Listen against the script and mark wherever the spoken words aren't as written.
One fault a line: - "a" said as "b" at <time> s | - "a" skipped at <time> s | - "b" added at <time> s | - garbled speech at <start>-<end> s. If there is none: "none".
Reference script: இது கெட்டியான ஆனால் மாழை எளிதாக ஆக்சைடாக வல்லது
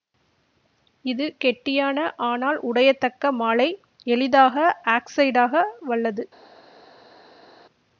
- "உடையத்தக்க" added at 2.6 s